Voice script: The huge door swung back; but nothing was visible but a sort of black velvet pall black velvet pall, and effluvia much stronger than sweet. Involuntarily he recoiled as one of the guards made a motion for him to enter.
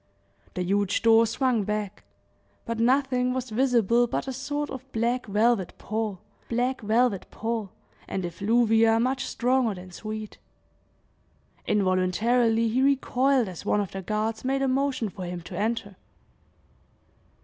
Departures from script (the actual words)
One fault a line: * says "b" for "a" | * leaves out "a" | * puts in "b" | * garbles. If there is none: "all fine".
all fine